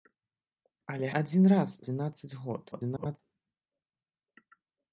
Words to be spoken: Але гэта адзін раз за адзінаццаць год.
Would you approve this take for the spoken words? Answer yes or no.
no